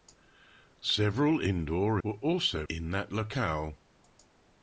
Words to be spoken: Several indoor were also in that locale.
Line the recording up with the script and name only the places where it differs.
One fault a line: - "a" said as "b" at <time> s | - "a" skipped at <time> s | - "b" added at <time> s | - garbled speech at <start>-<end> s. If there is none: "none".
none